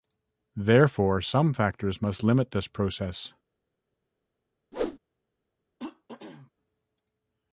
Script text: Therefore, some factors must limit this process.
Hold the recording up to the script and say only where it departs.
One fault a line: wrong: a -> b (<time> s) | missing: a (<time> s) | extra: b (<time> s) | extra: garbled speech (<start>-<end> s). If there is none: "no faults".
no faults